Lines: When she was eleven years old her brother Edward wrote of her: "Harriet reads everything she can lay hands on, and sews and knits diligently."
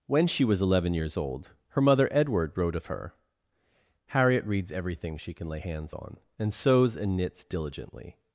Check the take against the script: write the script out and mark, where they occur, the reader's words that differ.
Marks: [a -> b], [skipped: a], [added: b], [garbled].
When she was eleven years old her [brother -> mother] Edward wrote of her: "Harriet reads everything she can lay hands on, and sews and knits diligently."